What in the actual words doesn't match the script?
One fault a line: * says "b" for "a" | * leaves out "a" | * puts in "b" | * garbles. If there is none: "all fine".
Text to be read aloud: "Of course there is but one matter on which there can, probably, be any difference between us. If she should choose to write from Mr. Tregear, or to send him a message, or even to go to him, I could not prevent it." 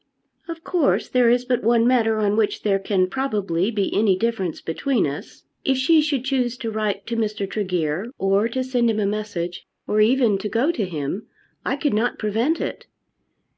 * says "to" for "from"